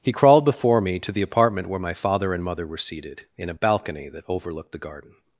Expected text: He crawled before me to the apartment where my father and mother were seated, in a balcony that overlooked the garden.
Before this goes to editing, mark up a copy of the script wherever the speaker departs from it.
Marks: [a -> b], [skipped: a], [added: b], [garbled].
He crawled before me to the apartment where my father and mother were seated, in a balcony that overlooked the garden.